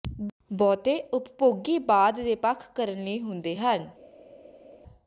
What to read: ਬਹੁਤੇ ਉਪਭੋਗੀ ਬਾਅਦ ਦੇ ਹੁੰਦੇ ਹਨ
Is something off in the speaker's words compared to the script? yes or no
yes